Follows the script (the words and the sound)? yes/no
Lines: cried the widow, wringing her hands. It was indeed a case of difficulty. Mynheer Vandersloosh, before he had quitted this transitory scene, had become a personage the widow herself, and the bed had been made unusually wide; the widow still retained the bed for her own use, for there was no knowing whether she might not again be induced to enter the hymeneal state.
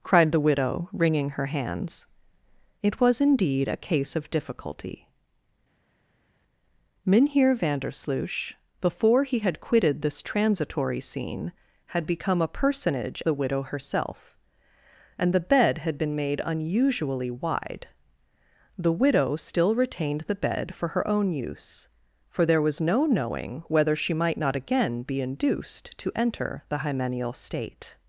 yes